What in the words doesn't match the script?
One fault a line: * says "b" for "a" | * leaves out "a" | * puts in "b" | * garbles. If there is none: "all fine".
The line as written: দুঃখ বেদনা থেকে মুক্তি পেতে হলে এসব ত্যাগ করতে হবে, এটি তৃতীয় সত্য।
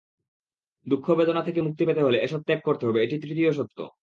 all fine